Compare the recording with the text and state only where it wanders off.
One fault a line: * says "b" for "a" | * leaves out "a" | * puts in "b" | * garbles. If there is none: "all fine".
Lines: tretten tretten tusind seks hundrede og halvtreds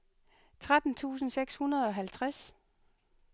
* leaves out "tretten"